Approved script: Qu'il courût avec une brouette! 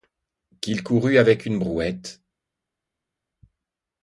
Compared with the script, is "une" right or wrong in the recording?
right